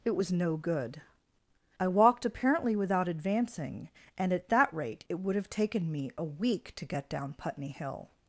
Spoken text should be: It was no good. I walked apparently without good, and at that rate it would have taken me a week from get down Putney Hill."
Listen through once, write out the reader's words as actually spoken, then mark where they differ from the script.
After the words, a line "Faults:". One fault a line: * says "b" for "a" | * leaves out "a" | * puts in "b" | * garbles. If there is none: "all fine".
It was no good. I walked apparently without advancing, and at that rate it would have taken me a week to get down Putney Hill."
Faults:
* says "advancing" for "good"
* says "to" for "from"